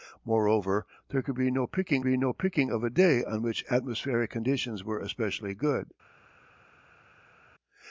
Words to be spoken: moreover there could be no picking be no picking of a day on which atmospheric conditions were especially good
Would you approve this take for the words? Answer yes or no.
yes